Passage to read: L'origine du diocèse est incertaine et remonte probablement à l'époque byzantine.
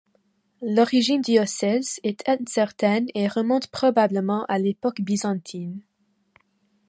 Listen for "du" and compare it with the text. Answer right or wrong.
wrong